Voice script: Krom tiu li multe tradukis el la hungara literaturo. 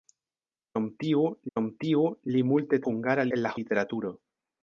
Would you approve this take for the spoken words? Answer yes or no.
no